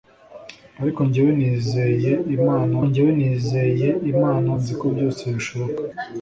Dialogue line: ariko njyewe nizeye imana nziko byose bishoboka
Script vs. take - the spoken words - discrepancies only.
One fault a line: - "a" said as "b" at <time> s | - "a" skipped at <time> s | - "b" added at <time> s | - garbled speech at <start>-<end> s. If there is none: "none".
- "njyewe nizeye imana" added at 2.9 s